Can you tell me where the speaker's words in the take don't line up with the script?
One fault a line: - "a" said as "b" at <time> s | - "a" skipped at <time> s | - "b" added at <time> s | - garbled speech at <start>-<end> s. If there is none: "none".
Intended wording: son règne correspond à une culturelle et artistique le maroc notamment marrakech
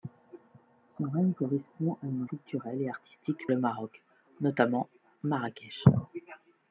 none